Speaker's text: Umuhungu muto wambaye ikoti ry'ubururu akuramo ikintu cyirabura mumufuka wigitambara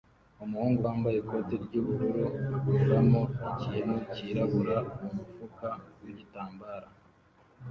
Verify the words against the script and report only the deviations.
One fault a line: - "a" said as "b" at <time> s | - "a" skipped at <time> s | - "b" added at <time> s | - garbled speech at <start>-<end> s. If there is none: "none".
- "muto" skipped at 0.8 s